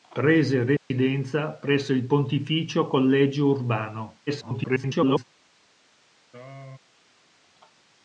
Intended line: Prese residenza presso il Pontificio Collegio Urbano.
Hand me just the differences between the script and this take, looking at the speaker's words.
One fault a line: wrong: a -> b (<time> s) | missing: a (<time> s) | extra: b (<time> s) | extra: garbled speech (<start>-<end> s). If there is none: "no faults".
extra: garbled speech (4.3-5.2 s)